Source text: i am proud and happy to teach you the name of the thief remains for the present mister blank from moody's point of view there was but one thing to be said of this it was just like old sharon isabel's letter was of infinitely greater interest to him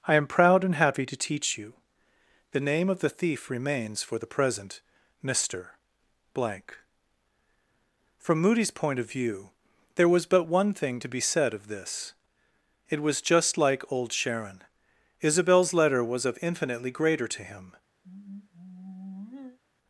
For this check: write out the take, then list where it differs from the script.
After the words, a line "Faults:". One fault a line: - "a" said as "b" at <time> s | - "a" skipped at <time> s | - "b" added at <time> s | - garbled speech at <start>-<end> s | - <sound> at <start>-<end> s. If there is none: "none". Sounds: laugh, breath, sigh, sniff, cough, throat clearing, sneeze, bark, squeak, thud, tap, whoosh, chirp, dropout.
i am proud and happy to teach you the name of the thief remains for the present mister blank from moody's point of view there was but one thing to be said of this it was just like old sharon isabel's letter was of infinitely greater to him
Faults:
- "interest" skipped at 17.3 s
- sigh at 18.0-19.6 s